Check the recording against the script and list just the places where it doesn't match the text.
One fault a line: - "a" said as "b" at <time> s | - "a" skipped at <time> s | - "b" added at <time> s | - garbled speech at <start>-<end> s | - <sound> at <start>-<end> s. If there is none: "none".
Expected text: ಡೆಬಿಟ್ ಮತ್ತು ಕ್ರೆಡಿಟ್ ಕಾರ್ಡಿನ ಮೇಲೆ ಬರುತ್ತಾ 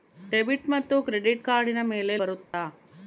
- dropout at 2.5-2.5 s